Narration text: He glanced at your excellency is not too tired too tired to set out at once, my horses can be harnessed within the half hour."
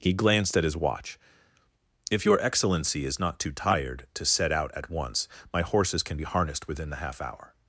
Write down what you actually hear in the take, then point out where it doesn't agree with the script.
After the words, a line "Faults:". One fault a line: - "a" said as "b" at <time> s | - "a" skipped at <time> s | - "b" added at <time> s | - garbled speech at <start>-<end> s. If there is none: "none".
He glanced at his watch. "If your excellency is not too tired to set out at once, my horses can be harnessed within the half hour."
Faults:
- "his watch If" added at 0.6 s
- "too tired" skipped at 4.1 s